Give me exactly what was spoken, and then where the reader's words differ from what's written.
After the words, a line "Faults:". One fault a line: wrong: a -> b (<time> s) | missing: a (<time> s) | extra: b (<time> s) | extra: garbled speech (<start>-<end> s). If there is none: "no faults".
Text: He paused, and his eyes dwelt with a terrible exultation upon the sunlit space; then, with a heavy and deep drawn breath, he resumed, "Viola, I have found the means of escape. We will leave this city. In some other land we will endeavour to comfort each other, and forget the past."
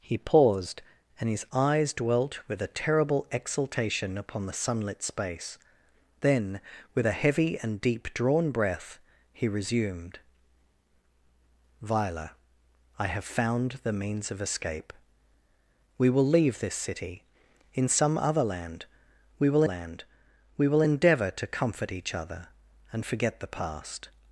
He paused, and his eyes dwelt with a terrible exultation upon the sunlit space; then, with a heavy and deep drawn breath, he resumed, "Viola, I have found the means of escape. We will leave this city. In some other land we will land we will endeavour to comfort each other, and forget the past."
Faults:
extra: land we will (19.6 s)